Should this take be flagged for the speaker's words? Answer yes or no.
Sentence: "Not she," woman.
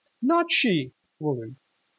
no